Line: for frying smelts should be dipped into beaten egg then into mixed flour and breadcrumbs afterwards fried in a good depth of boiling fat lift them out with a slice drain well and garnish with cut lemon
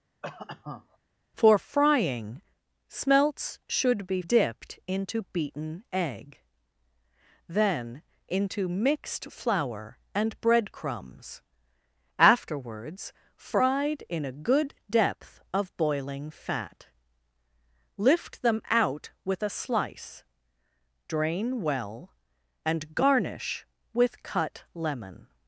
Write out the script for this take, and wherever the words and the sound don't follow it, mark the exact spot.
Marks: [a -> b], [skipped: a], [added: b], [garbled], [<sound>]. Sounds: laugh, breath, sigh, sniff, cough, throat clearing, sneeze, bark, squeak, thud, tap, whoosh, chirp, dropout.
[cough] for frying smelts should be dipped into beaten egg then into mixed flour and breadcrumbs afterwards fried in a good depth of boiling fat lift them out with a slice drain well and garnish with cut lemon